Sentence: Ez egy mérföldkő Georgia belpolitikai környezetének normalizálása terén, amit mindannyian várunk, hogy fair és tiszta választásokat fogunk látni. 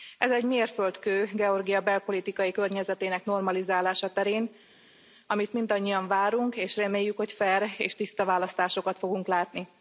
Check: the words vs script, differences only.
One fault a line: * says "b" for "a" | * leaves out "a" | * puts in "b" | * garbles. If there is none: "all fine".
* puts in "és reméljük"